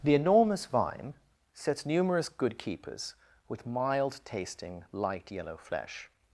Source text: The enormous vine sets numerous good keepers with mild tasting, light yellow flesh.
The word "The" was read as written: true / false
true